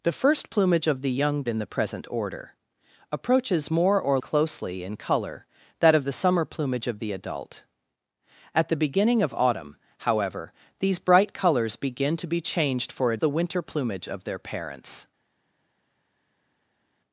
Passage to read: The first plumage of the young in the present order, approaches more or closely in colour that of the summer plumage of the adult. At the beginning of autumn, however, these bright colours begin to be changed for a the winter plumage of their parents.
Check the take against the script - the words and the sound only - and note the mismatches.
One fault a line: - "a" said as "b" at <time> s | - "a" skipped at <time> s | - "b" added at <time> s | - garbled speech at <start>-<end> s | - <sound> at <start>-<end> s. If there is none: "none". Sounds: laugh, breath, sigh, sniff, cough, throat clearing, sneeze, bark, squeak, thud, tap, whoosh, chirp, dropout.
none